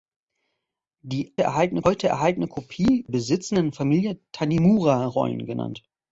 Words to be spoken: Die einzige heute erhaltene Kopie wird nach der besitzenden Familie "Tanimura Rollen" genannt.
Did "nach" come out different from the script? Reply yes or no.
yes